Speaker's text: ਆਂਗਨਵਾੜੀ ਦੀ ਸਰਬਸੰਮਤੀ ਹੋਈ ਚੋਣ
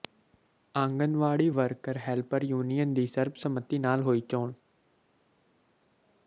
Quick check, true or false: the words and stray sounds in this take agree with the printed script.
false